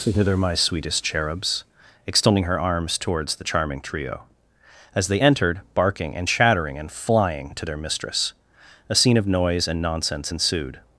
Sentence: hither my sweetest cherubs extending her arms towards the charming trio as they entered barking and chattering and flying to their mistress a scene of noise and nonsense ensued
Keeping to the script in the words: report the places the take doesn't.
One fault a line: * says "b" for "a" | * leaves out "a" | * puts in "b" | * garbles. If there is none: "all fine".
all fine